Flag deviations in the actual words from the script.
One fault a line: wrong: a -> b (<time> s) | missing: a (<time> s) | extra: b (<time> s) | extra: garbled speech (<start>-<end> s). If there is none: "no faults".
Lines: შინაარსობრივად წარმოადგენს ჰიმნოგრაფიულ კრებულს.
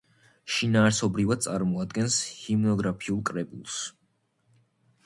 no faults